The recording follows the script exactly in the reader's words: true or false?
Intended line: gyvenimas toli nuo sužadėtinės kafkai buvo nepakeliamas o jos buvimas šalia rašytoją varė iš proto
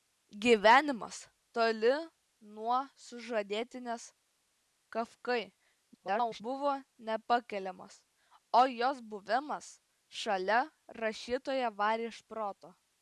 false